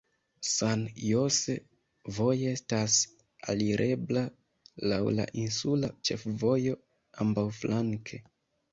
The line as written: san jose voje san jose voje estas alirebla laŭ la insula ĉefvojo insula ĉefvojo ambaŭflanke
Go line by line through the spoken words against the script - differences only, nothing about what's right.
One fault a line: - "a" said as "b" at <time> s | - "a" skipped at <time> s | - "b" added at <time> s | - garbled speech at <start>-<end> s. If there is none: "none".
- "san jose voje" skipped at 2.5 s
- "insula ĉefvojo" skipped at 6.8 s